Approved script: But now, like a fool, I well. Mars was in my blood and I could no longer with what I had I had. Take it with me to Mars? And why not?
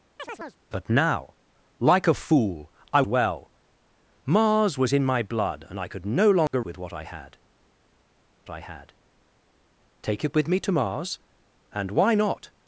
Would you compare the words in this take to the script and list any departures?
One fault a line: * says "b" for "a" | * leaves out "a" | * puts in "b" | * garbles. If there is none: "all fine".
all fine